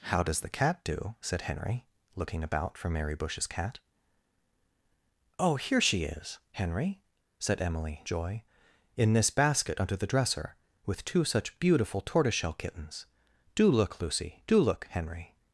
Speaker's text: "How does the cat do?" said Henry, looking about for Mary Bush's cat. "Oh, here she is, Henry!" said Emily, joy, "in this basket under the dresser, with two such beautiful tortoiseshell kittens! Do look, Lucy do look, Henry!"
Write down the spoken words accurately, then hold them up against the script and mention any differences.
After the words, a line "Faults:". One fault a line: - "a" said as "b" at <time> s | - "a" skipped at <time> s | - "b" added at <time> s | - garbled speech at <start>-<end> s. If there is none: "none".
"How does the cat do?" said Henry, looking about for Mary Bush's cat. "Oh, here she is, Henry!" said Emily, joy, "in this basket under the dresser, with two such beautiful tortoiseshell kittens! Do look, Lucy do look, Henry!"
Faults:
none